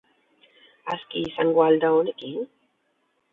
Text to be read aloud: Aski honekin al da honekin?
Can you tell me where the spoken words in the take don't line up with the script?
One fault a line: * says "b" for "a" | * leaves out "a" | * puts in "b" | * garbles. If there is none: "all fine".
* says "izango" for "honekin"